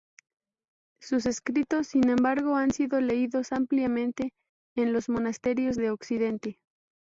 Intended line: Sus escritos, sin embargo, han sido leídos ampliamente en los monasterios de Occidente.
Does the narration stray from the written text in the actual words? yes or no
no